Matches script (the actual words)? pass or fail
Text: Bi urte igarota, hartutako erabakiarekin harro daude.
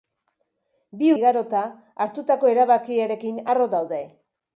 fail